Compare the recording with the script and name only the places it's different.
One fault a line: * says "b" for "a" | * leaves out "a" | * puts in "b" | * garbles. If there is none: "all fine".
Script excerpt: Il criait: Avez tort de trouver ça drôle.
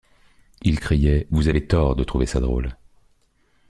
* puts in "Vous"